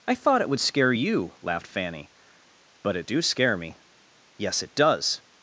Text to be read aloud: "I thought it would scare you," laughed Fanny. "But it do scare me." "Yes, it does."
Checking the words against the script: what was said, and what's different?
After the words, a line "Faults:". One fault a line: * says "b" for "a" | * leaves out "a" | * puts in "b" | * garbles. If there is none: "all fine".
"I thought it would scare you," laughed Fanny. "But it do scare me." "Yes, it does."
Faults:
all fine